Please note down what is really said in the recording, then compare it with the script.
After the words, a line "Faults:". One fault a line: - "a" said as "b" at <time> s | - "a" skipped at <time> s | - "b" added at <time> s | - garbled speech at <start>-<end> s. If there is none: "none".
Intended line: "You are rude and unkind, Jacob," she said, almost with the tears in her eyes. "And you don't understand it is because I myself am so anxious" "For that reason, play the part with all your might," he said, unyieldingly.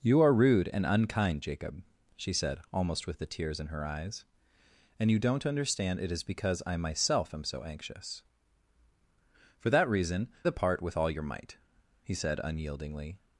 "You are rude and unkind, Jacob," she said, almost with the tears in her eyes. "And you don't understand it is because I myself am so anxious" "For that reason, the part with all your might," he said, unyieldingly.
Faults:
- "play" skipped at 10.3 s